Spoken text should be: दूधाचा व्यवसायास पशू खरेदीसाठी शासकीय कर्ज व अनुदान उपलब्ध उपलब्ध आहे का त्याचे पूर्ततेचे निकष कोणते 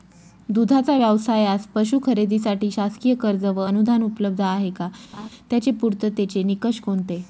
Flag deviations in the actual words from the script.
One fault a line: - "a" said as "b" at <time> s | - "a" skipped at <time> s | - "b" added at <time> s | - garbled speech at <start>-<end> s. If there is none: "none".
- "उपलब्ध" skipped at 4.4 s